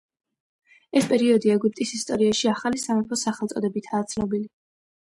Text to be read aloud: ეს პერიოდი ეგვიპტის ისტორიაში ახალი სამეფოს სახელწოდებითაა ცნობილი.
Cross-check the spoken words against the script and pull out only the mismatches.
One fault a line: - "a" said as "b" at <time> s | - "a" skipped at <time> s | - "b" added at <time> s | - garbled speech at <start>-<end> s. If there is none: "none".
none